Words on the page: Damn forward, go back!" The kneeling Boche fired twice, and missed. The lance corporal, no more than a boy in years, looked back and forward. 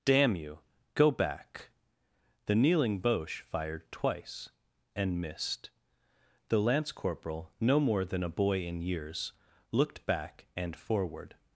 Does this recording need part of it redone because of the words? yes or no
yes